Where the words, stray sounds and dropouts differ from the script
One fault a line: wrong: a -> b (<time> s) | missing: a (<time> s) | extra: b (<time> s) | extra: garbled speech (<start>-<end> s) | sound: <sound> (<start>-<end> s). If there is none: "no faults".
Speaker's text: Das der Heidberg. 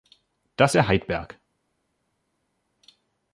no faults